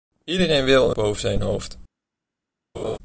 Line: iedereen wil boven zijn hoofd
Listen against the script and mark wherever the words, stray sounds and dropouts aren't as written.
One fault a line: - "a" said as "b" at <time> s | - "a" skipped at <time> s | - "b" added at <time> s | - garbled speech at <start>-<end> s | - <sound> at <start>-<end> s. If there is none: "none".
- laugh at 2.7-3.0 s